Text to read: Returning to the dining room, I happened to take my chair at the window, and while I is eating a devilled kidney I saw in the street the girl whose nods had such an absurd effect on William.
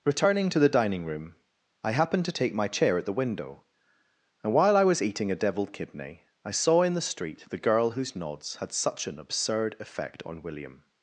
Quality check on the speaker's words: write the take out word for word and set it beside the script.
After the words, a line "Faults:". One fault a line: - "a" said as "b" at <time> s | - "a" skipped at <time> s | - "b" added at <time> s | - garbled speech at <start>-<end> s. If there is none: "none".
Returning to the dining room, I happened to take my chair at the window, and while I was eating a devilled kidney I saw in the street the girl whose nods had such an absurd effect on William.
Faults:
- "is" said as "was" at 4.8 s